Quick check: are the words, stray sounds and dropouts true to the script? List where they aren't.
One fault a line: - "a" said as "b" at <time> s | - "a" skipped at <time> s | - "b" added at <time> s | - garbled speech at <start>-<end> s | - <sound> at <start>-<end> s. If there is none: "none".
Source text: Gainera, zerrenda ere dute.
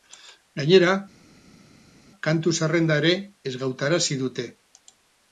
- "kantu" added at 2.3 s
- "ezgautarazi" added at 3.5 s